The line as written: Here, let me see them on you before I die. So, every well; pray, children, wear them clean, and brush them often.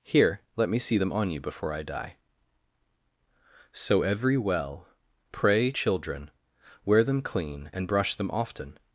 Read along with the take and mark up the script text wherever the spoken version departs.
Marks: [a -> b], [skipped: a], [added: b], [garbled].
Here, let me see them on you before I die. So, every well; pray, children, wear them clean, and brush them often.